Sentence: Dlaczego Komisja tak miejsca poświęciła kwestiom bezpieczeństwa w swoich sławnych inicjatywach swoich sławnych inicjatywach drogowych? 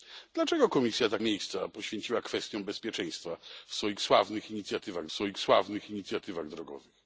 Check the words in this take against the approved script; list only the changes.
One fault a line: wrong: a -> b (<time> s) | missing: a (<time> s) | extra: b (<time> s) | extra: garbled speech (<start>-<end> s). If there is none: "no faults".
no faults